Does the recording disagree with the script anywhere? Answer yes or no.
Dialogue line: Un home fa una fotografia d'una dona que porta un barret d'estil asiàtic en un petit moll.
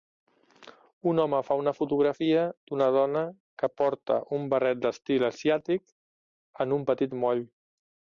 no